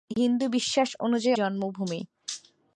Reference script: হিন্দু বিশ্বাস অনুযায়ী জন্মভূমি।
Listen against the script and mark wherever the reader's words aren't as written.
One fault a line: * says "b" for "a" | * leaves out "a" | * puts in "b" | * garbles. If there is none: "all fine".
all fine